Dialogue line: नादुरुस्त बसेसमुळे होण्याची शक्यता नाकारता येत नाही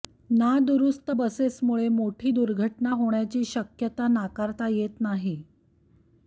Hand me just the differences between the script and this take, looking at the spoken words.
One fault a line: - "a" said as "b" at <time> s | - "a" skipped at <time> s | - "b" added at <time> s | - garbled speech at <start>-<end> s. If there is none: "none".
- "मोठी दुर्घटना" added at 1.9 s